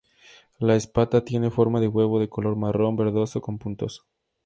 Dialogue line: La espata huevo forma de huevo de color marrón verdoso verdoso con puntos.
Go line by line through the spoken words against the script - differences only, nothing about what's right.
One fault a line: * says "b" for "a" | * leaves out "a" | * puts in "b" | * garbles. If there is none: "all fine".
* says "tiene" for "huevo"
* leaves out "verdoso"